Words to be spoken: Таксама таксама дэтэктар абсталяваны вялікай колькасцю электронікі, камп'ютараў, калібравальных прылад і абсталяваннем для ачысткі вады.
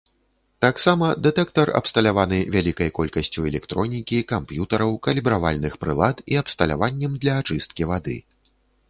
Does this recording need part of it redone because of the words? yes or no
yes